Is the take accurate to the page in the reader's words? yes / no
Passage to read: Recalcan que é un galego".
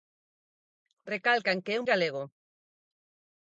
yes